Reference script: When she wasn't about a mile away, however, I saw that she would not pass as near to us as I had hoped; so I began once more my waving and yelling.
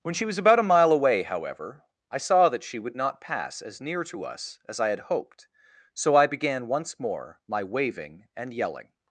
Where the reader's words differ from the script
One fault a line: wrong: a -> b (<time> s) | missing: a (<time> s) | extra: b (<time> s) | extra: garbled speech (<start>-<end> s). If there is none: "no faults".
wrong: wasn't -> was (0.2 s)